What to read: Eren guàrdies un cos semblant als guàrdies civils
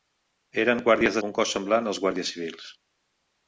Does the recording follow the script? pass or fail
pass